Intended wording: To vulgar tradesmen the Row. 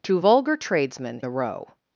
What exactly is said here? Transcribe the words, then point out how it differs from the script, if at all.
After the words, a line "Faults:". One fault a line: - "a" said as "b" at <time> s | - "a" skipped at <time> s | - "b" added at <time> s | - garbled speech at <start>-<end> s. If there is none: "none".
To vulgar tradesmen the Row.
Faults:
none